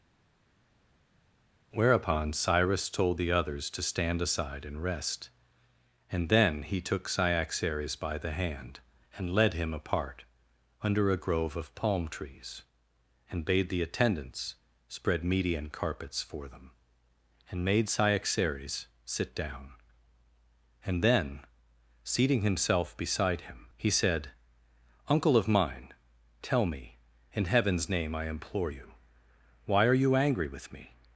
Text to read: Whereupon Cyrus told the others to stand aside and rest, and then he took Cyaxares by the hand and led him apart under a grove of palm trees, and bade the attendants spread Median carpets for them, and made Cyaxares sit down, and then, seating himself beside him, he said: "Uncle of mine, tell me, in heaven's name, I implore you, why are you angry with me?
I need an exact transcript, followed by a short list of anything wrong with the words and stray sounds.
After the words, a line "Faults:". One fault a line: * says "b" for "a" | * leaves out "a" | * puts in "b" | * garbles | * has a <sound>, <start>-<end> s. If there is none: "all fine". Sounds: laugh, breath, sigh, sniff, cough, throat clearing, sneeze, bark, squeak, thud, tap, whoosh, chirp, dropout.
Whereupon Cyrus told the others to stand aside and rest, and then he took Cyaxares by the hand and led him apart under a grove of palm trees, and bade the attendants spread Median carpets for them, and made Cyaxares sit down, and then, seating himself beside him, he said: "Uncle of mine, tell me, in heaven's name, I implore you, why are you angry with me?
Faults:
all fine